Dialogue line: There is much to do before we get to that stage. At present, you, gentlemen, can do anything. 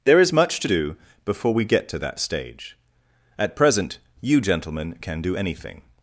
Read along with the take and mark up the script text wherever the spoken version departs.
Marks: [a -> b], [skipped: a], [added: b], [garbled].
There is much to do before we get to that stage. At present, you, gentlemen, can do anything.